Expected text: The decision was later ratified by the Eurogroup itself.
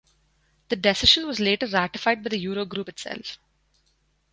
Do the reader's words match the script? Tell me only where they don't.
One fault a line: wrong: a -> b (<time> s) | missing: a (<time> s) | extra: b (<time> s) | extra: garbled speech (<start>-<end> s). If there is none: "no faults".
no faults